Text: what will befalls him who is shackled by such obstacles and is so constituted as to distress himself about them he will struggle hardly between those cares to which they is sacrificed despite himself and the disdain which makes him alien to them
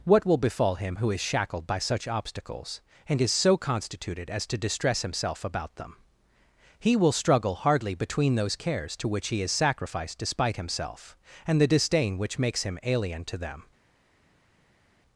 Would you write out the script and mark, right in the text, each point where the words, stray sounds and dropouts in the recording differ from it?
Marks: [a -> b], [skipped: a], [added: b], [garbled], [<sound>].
what will [befalls -> befall] him who is shackled by such obstacles and is so constituted as to distress himself about them he will struggle hardly between those cares to which [they -> he] is sacrificed despite himself and the disdain which makes him alien to them